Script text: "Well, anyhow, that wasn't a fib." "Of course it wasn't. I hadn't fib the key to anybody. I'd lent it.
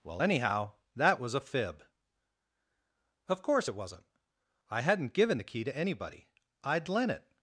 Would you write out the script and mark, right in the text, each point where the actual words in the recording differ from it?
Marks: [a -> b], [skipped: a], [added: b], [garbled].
"Well, anyhow, that [wasn't -> was] a fib." "Of course it wasn't. I hadn't [fib -> given] the key to anybody. I'd lent it.